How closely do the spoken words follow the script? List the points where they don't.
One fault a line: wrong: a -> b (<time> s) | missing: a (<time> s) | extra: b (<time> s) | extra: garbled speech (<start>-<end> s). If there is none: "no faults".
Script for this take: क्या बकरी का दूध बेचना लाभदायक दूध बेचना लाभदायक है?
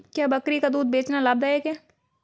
missing: दूध बेचना लाभदायक (1.6 s)